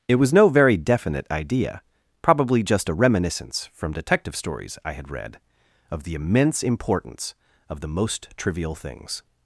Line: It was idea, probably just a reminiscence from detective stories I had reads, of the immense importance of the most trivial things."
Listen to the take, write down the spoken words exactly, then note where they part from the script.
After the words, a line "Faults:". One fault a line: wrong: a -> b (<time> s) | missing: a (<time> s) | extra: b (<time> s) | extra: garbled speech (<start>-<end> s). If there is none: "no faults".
It was no very definite idea, probably just a reminiscence from detective stories I had read, of the immense importance of the most trivial things."
Faults:
extra: no very definite (0.3 s)
wrong: reads -> read (5.1 s)